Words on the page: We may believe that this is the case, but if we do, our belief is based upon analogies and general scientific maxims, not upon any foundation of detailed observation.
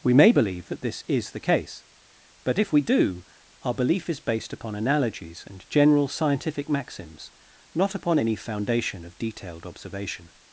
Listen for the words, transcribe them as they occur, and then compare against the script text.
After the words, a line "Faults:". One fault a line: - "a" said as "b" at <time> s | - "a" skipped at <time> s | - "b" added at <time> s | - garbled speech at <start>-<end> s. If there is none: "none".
We may believe that this is the case, but if we do, our belief is based upon analogies and general scientific maxims, not upon any foundation of detailed observation.
Faults:
none